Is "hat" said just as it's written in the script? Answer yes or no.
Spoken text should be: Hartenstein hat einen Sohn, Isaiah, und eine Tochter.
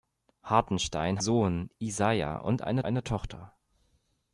no